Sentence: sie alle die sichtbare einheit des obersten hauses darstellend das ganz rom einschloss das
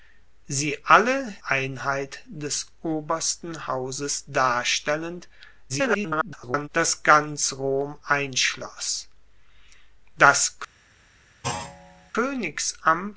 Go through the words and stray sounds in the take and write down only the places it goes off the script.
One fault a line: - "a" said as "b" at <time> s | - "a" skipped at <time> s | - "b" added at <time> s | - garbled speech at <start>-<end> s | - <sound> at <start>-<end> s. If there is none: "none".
- "die sichtbare" skipped at 1.4 s
- garbled speech at 5.7-6.7 s
- thud at 11.4-12.1 s